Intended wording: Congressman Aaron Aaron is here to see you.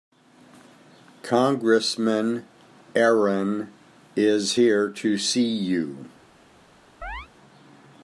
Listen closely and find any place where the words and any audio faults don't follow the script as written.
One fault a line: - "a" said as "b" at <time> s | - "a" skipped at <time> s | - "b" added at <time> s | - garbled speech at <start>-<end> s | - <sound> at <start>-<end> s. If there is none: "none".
- "Aaron" skipped at 3.7 s
- chirp at 7.0-7.3 s